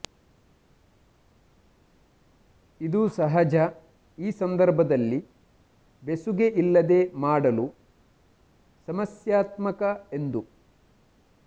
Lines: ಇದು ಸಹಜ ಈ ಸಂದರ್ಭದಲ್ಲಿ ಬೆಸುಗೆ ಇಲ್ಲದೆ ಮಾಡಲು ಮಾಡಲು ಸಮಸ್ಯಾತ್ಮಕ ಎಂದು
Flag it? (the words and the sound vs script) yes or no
yes